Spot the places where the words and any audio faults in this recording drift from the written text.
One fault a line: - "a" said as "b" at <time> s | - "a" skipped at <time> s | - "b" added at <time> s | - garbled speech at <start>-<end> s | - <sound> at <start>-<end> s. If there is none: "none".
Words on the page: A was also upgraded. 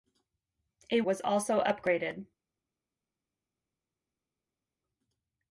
none